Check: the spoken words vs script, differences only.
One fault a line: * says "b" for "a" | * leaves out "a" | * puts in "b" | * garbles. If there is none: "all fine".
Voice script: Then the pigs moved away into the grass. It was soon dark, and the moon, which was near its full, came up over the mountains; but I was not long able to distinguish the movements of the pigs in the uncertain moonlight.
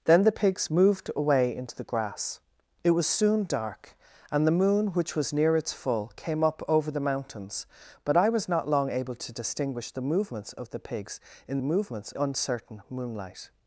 * says "movements" for "the"